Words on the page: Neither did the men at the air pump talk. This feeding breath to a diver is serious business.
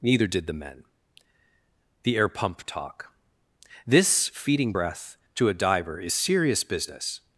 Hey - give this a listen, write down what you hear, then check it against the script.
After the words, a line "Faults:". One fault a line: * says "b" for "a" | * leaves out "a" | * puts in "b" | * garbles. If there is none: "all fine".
Neither did the men the air pump talk. This feeding breath to a diver is serious business.
Faults:
* leaves out "at"